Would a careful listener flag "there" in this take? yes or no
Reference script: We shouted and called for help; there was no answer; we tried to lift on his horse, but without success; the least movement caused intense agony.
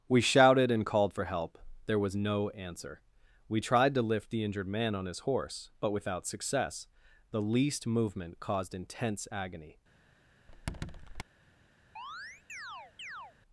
no